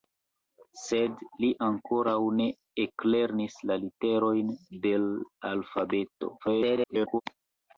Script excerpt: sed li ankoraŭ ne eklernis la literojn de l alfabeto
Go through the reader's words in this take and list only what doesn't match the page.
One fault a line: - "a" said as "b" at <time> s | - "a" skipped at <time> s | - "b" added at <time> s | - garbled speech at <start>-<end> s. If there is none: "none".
- garbled speech at 6.4-7.2 s